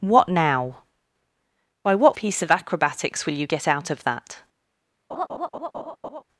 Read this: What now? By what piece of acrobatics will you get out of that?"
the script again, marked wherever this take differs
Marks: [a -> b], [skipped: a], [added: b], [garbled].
What now? By what piece of acrobatics will you get out of that?"